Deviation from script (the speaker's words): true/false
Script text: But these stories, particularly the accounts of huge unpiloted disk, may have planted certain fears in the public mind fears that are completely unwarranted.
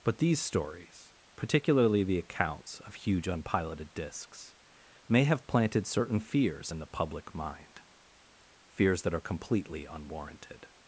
true